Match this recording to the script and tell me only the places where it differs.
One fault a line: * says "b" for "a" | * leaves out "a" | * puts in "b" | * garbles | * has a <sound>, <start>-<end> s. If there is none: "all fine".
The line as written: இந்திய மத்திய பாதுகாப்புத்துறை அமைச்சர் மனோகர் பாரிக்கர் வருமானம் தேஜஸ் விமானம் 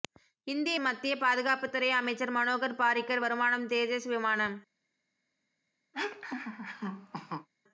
* has a laugh, 5.9-7.5 s